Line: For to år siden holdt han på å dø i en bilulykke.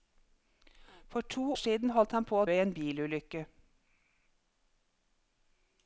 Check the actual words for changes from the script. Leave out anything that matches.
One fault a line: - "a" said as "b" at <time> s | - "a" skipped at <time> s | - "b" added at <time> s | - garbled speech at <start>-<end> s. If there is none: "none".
- "år" skipped at 1.5 s
- "dø" skipped at 2.4 s